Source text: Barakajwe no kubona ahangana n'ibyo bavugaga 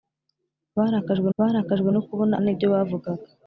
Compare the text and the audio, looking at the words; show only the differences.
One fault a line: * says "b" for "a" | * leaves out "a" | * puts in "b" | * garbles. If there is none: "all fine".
* puts in "barakajwe"
* leaves out "ahangana"